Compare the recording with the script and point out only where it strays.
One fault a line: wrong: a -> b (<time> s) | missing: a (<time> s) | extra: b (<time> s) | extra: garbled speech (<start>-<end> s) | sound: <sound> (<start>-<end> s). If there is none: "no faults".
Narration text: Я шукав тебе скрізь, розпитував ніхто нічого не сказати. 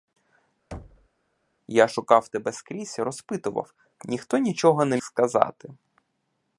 sound: thud (0.7-1.1 s)